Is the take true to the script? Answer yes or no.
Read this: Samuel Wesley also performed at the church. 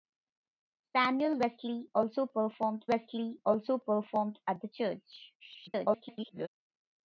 no